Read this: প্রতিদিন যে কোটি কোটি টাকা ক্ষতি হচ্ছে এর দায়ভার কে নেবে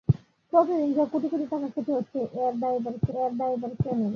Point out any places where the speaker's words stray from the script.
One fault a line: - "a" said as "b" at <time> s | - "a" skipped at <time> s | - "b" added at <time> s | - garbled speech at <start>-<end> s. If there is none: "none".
- "এর দায়ভার কে" added at 3.2 s